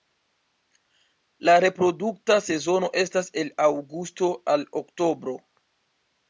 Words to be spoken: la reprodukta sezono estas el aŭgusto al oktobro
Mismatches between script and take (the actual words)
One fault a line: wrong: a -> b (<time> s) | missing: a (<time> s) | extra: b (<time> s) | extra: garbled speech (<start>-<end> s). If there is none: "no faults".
no faults